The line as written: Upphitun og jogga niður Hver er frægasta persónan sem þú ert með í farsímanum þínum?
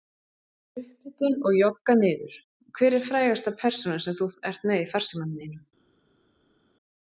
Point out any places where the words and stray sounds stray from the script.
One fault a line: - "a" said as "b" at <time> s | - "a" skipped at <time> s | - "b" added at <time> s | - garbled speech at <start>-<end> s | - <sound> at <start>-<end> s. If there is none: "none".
none